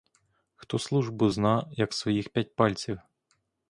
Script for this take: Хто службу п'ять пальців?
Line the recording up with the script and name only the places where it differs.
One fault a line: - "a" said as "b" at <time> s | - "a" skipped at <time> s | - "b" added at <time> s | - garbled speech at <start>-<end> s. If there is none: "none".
- "зна як своїх" added at 1.3 s